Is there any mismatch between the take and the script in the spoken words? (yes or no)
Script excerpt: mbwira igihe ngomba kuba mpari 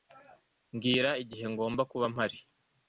no